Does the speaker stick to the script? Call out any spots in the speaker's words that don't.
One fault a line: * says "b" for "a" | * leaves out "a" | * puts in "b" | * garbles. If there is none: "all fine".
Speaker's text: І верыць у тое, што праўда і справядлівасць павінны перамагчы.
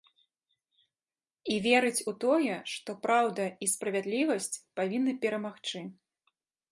all fine